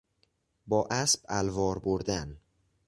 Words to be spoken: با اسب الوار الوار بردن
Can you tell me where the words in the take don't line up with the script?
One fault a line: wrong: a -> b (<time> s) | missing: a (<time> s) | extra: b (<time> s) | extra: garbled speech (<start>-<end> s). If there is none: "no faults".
missing: الوار (1.8 s)